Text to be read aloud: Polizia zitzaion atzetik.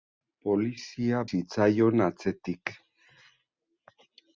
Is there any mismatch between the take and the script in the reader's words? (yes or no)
no